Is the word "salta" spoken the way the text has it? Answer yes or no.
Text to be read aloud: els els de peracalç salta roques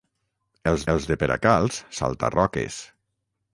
yes